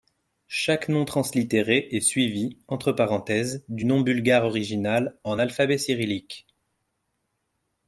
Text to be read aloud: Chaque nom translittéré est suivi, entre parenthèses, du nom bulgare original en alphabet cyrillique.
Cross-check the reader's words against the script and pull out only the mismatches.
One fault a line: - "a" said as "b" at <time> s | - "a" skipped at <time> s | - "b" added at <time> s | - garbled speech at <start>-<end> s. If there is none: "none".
none